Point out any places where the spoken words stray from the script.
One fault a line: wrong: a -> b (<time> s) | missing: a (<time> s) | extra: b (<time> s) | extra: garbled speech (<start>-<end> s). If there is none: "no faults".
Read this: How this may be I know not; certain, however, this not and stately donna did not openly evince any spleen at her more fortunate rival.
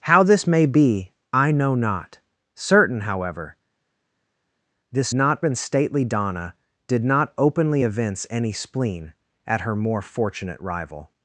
no faults